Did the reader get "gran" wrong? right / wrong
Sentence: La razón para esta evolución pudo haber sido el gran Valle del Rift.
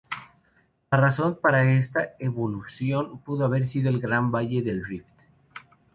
right